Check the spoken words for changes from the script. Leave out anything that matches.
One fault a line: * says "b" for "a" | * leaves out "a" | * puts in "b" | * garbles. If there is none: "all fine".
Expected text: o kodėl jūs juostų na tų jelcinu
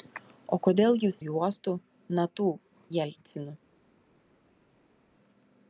all fine